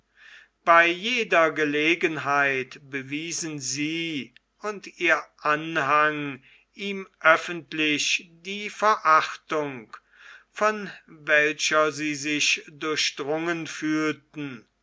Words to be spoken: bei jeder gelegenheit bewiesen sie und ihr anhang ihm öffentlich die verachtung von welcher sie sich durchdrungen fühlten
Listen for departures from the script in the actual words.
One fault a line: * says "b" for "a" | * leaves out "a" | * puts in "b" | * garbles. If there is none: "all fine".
all fine